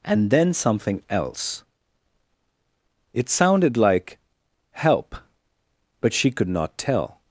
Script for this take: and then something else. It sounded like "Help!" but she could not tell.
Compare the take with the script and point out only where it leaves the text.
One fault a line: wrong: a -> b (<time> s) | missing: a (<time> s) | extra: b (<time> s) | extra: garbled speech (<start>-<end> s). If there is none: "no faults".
no faults